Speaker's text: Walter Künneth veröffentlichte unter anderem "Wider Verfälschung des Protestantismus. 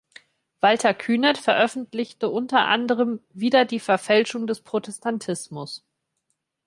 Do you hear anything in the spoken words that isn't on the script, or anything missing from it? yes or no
yes